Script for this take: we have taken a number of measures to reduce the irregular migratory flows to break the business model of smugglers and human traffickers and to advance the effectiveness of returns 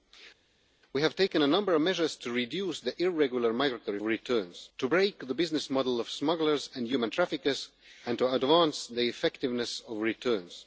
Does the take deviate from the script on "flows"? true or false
true